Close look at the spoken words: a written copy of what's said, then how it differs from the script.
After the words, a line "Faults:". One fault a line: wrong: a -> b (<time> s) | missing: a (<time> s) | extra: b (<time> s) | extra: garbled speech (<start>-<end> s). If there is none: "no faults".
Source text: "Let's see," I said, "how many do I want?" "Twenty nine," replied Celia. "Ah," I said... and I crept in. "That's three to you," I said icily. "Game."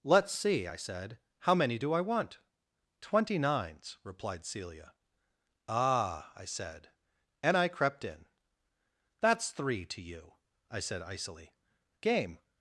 "Let's see," I said, "how many do I want?" "Twenty nines," replied Celia. "Ah," I said... and I crept in. "That's three to you," I said icily. "Game."
Faults:
wrong: nine -> nines (3.4 s)